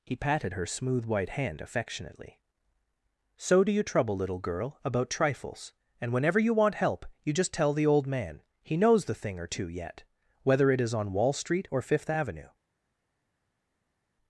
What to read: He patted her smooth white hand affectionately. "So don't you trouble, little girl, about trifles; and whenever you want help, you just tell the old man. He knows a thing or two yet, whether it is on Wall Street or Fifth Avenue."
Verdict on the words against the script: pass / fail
fail